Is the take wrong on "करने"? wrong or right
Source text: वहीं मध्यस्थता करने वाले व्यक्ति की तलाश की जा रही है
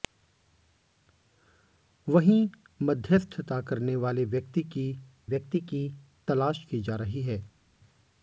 right